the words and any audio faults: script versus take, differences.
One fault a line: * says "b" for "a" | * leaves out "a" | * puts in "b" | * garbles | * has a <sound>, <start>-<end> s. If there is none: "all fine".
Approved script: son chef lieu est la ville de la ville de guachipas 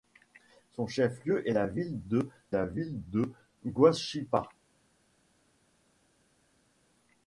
all fine